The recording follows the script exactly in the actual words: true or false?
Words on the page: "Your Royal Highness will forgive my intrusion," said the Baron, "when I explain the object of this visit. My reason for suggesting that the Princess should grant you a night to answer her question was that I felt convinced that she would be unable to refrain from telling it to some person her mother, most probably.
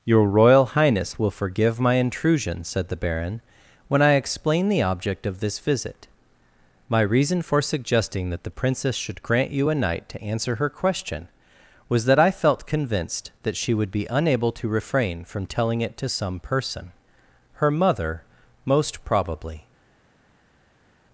true